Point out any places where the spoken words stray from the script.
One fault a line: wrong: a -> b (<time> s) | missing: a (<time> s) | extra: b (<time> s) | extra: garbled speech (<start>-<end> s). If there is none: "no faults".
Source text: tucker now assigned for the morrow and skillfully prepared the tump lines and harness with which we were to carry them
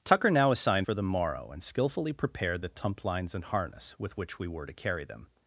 no faults